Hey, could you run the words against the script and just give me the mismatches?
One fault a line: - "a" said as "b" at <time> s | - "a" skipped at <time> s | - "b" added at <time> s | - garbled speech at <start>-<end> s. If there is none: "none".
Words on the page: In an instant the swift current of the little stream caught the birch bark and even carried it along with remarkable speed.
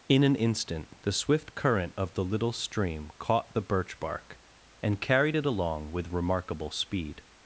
- "even" skipped at 5.0 s